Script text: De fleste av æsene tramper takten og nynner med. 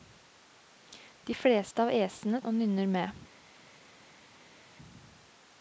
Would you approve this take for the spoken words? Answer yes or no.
no